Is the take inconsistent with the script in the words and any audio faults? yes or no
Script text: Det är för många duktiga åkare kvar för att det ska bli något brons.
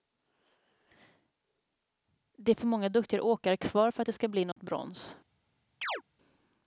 yes